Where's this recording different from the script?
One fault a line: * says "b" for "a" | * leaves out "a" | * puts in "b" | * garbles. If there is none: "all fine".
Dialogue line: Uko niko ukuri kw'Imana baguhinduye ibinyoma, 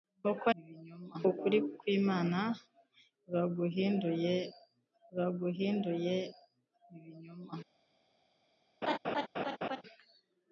* says "ibinyoma" for "niko"
* puts in "baguhinduye"